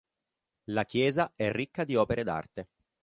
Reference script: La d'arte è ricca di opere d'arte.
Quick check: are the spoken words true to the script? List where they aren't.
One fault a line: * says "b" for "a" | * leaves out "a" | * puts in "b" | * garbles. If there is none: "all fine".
* says "chiesa" for "d'arte"